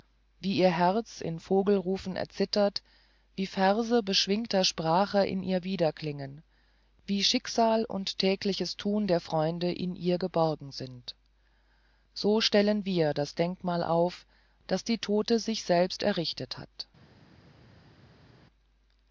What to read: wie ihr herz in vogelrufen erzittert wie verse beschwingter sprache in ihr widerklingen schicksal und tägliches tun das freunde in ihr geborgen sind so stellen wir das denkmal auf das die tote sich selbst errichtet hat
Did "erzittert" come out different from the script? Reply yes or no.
no